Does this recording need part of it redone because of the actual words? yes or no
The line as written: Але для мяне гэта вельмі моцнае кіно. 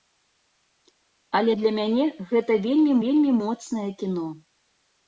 yes